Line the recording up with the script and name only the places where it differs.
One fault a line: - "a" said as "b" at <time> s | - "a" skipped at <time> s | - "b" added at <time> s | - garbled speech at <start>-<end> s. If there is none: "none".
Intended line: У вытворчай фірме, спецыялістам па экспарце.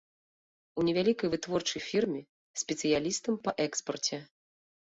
- "невялікай" added at 0.9 s